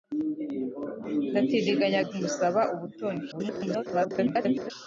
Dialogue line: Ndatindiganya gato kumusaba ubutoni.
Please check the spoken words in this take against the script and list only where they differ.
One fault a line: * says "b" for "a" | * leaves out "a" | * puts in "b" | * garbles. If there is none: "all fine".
* leaves out "gato"
* garbles